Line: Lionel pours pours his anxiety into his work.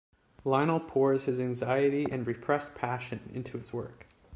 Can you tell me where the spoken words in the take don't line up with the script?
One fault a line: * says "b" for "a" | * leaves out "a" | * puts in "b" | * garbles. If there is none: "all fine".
* leaves out "pours"
* puts in "and repressed passion"